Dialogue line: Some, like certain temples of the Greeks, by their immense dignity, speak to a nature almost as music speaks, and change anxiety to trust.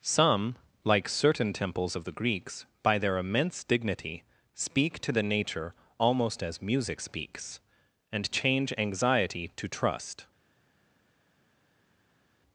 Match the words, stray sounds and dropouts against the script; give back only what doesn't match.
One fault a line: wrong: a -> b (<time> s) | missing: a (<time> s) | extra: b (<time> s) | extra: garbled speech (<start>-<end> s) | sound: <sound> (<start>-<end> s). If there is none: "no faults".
wrong: a -> the (5.1 s)